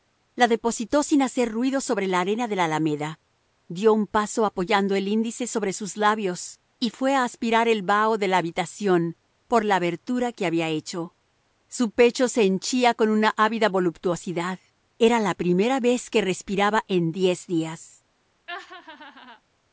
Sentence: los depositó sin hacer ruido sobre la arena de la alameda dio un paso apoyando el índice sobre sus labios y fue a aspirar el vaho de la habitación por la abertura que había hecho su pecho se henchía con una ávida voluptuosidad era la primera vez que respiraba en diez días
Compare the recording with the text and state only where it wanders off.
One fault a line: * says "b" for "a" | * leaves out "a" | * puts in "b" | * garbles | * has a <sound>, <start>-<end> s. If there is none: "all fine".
* says "la" for "los"
* has a laugh, 18.5-19.4 s